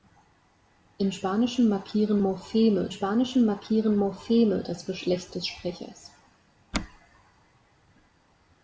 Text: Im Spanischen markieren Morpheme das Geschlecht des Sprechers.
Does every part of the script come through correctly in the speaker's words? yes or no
no